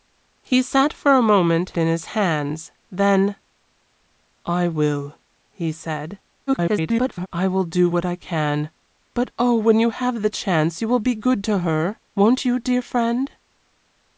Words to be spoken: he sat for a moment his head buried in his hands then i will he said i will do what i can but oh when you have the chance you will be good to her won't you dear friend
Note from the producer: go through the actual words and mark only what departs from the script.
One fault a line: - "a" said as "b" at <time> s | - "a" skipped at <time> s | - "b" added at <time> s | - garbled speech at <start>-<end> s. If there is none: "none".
- "his head buried" skipped at 1.7 s
- garbled speech at 6.5-7.3 s